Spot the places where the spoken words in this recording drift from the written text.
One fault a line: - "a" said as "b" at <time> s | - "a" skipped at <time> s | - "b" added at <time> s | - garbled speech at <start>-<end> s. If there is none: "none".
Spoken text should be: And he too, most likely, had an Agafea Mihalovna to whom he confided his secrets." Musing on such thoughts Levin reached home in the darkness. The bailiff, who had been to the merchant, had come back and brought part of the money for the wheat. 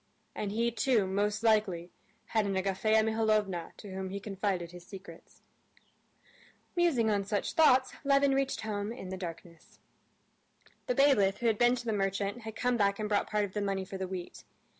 none